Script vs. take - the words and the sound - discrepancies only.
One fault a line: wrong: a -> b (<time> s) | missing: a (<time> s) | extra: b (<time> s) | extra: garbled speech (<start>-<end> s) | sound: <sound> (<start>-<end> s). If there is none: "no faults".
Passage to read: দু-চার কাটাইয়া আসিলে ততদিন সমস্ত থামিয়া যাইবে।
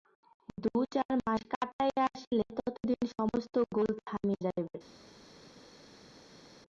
extra: মাস (1.2 s)
extra: গোল (3.8 s)